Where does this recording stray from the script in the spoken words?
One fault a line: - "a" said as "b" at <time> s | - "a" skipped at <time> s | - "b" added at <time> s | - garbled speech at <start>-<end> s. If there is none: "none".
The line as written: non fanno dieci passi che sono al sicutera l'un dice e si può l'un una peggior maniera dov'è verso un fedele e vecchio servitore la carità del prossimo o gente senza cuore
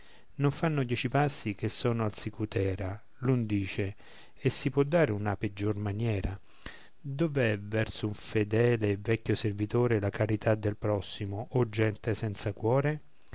- "l'un" said as "dare" at 4.8 s